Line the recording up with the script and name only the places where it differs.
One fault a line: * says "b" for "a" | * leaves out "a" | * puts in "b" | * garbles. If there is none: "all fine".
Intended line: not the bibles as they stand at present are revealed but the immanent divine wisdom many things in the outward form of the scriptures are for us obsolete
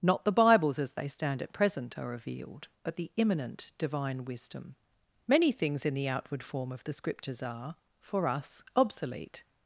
all fine